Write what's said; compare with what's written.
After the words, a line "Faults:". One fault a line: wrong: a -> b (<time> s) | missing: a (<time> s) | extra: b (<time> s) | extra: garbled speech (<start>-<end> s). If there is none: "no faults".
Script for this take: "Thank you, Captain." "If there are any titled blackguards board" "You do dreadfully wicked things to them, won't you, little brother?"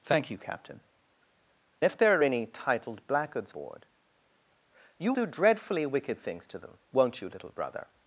"Thank you, Captain." "If there are any titled blackguards board" "You do dreadfully wicked things to them, won't you, little brother?"
Faults:
no faults